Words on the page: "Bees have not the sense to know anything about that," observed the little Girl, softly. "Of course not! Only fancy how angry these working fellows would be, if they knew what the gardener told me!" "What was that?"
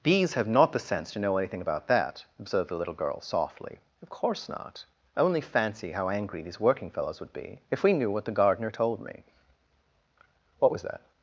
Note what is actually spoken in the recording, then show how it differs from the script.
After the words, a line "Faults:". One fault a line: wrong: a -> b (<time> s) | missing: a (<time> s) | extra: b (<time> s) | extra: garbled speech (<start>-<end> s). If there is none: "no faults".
"Bees have not the sense to know anything about that," observed the little Girl, softly. "Of course not! Only fancy how angry these working fellows would be, if we knew what the gardener told me!" "What was that?"
Faults:
wrong: they -> we (7.8 s)